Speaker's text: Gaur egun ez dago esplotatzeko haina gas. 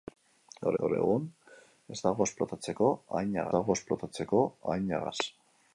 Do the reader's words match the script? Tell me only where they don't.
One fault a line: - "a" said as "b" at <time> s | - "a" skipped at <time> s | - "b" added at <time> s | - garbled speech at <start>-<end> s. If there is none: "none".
- "gaur" added at 0.8 s
- "dago esplotatzeko haina" added at 3.6 s